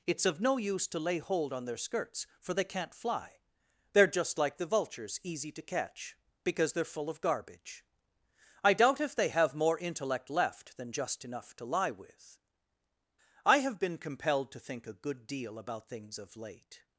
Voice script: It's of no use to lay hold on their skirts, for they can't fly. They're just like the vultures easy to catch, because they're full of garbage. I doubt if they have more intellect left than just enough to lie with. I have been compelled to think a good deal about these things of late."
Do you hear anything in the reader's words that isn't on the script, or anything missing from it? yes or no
yes